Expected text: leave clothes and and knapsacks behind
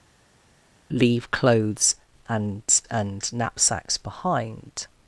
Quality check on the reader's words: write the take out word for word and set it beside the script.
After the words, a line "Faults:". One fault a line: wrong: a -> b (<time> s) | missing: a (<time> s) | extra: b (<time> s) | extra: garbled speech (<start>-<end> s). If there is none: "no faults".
leave clothes and and knapsacks behind
Faults:
no faults